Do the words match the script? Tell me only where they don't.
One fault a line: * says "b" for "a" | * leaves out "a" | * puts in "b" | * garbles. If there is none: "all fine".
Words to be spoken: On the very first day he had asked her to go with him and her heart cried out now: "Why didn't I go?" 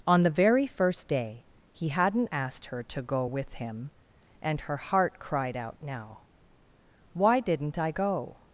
* says "hadn't" for "had"